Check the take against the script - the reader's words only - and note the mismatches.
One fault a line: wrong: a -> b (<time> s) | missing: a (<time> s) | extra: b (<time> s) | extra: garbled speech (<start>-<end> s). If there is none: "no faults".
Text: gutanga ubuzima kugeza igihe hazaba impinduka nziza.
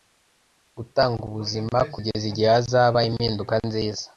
no faults